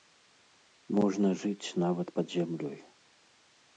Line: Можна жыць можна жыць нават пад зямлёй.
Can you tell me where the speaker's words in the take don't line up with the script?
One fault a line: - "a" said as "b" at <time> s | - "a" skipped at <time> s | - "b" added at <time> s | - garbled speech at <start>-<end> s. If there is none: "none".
- "можна жыць" skipped at 1.7 s